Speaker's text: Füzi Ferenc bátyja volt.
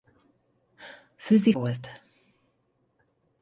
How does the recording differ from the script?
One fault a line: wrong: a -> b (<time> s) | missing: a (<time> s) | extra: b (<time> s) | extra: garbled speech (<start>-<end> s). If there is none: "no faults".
missing: Ferenc bátyja (1.5 s)